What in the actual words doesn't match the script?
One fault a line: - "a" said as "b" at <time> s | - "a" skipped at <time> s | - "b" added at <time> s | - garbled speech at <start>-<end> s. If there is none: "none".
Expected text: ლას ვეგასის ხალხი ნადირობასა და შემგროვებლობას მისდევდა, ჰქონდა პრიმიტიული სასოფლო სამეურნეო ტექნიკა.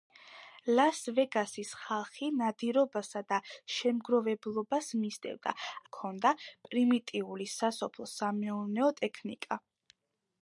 none